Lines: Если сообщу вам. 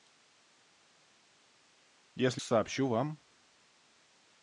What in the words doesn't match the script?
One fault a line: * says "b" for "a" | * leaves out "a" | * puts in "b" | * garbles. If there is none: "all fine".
all fine